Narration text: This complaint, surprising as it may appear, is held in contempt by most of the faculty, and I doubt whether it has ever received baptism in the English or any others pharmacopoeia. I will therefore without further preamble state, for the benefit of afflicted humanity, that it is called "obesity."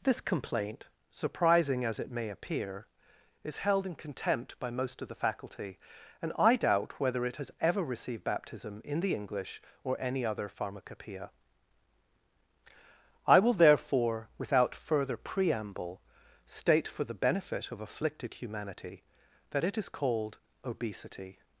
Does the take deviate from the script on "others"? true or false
true